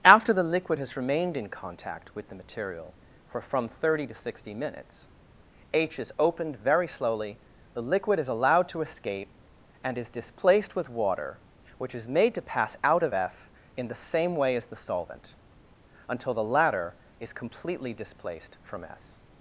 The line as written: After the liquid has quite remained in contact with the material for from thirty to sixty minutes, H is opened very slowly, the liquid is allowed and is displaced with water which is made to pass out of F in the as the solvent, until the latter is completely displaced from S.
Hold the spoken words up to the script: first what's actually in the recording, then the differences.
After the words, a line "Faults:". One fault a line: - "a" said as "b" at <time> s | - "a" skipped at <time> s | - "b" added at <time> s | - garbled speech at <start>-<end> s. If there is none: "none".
After the liquid has remained in contact with the material for from thirty to sixty minutes, H is opened very slowly, the liquid is allowed to escape and is displaced with water which is made to pass out of F in the same way as the solvent, until the latter is completely displaced from S.
Faults:
- "quite" skipped at 1.0 s
- "to escape" added at 8.7 s
- "same way" added at 13.9 s